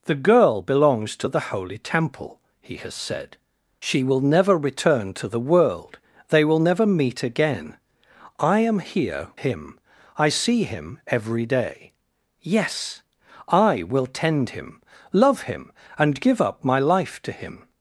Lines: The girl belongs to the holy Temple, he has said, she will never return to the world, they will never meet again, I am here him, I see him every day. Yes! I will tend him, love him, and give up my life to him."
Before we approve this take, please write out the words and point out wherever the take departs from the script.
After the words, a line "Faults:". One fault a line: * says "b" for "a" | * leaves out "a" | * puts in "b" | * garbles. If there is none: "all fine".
The girl belongs to the holy Temple, he has said, she will never return to the world, they will never meet again, I am here him, I see him every day. Yes! I will tend him, love him, and give up my life to him."
Faults:
all fine